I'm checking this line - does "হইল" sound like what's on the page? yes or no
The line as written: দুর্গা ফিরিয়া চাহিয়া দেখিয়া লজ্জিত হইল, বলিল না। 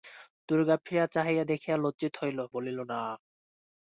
yes